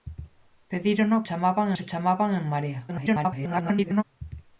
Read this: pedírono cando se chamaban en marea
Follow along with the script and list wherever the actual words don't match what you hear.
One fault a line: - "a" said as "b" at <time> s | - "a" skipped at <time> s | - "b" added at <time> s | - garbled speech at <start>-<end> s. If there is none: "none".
- "cando" said as "chamaban" at 1.3 s
- garbled speech at 2.9-4.0 s